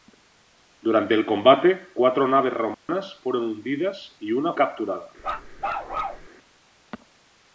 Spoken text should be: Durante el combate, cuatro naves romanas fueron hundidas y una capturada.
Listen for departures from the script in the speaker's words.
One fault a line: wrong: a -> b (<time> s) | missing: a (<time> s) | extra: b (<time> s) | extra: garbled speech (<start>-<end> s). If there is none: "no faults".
no faults